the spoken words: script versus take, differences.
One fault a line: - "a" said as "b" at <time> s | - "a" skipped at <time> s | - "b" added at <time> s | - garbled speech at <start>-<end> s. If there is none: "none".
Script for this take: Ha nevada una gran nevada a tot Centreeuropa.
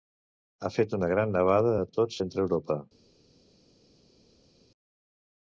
- "nevada" said as "fet" at 0.8 s